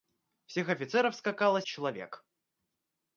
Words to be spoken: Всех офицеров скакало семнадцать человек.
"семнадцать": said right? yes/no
no